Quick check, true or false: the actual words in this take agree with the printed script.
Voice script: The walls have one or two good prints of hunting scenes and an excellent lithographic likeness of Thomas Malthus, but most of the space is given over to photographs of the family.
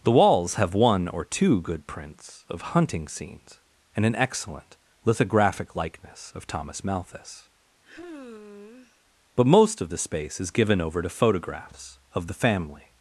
true